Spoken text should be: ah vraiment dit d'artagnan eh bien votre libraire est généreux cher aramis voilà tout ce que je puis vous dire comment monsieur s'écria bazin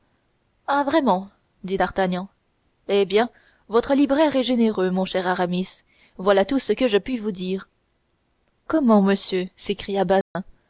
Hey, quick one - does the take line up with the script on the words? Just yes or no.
no